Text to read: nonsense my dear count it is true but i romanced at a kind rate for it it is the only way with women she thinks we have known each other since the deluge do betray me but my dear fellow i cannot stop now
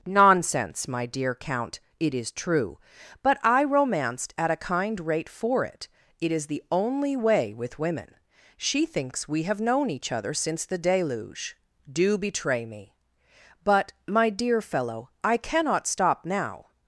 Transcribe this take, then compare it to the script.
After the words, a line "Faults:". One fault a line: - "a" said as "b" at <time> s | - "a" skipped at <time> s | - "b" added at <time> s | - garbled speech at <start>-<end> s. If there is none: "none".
nonsense my dear count it is true but i romanced at a kind rate for it it is the only way with women she thinks we have known each other since the deluge do betray me but my dear fellow i cannot stop now
Faults:
none